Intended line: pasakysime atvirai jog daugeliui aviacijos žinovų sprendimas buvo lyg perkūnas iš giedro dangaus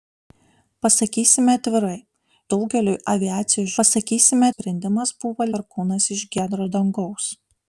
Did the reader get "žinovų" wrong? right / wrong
wrong